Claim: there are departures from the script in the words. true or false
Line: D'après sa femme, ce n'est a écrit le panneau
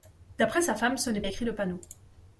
false